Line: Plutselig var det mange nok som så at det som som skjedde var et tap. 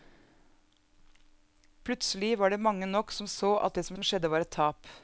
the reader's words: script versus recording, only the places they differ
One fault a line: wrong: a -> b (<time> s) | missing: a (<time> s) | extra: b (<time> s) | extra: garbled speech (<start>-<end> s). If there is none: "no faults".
no faults